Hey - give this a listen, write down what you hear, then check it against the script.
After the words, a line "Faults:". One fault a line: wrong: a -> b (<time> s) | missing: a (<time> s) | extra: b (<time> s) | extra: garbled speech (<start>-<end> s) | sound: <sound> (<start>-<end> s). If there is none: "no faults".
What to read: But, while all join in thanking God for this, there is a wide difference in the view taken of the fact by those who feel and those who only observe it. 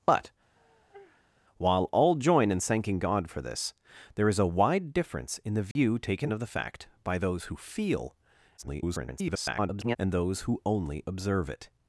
But, while all join in thanking God for this, there is a wide difference in the view taken of the fact by those who feel [garbled] and those who only observe it.
Faults:
sound: sigh (0.6-1.3 s)
sound: dropout (5.7-5.8 s)
extra: garbled speech (8.6-10.0 s)